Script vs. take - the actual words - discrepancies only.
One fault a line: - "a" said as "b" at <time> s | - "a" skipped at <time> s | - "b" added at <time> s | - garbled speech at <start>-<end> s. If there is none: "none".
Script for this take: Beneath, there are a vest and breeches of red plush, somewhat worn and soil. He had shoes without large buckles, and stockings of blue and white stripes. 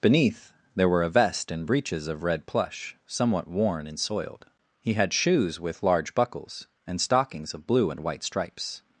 - "are" said as "were" at 0.9 s
- "soil" said as "soiled" at 4.0 s
- "without" said as "with" at 5.6 s